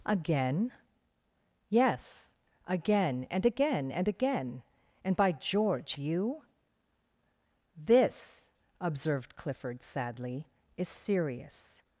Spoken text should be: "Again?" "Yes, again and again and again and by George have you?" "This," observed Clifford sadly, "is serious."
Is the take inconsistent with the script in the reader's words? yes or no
yes